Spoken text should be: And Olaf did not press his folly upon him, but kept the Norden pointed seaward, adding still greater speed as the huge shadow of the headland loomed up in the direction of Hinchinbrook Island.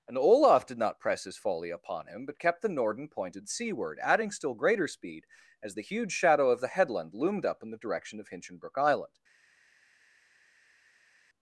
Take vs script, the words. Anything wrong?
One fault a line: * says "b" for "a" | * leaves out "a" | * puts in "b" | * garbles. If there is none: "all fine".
all fine